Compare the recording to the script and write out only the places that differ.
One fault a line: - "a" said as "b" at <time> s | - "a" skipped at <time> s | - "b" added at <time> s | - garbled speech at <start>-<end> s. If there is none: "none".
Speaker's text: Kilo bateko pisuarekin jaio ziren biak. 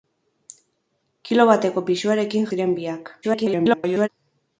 - "jaio" skipped at 2.5 s
- garbled speech at 3.2-4.1 s